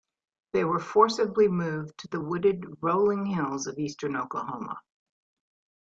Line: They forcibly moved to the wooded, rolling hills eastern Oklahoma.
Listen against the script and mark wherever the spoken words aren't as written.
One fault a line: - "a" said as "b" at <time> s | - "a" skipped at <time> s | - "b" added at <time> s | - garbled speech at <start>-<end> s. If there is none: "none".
- "were" added at 0.6 s
- "of" added at 3.7 s